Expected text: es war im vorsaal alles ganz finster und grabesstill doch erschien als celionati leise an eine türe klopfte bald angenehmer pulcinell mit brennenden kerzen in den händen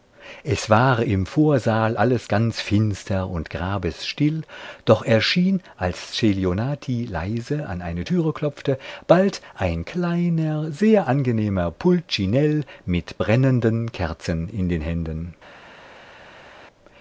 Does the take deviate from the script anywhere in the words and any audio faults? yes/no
yes